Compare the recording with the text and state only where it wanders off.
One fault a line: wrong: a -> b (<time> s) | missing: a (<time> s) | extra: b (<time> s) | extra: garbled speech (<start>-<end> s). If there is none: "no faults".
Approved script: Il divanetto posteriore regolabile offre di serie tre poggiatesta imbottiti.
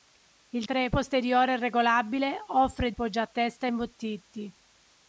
wrong: divanetto -> tre (0.6 s)
missing: di serie tre (2.9 s)